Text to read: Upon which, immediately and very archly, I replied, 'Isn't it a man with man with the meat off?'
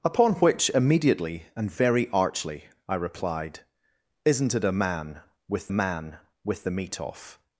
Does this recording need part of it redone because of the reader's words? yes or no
no